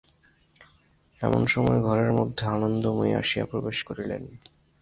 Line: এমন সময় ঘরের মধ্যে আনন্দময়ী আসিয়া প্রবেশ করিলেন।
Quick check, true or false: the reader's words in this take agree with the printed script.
true